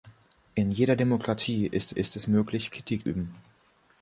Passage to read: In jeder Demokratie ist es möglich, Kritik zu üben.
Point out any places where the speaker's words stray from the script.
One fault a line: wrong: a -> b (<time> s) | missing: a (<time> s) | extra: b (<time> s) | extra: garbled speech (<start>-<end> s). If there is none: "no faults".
extra: ist (1.9 s)
missing: zu (3.1 s)